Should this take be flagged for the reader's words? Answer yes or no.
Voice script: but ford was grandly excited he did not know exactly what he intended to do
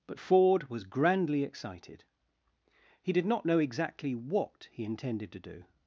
no